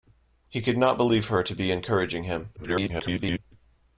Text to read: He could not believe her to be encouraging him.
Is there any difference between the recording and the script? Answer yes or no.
yes